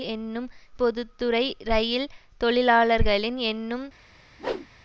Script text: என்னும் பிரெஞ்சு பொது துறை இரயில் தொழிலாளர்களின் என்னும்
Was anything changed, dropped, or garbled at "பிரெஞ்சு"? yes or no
yes